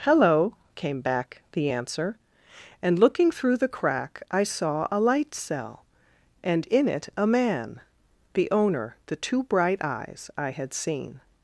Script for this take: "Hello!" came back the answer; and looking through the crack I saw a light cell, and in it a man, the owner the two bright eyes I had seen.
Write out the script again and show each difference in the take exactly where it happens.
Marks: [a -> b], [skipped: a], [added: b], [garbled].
"Hello!" came back the answer; and looking through the crack I saw a light cell, and in it a man, the owner the two bright eyes I had seen.